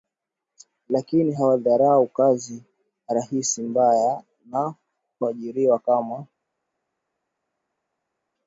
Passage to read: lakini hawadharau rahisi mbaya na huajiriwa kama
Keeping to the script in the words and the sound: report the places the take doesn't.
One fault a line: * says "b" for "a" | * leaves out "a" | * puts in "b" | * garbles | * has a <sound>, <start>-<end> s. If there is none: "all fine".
* puts in "kazi"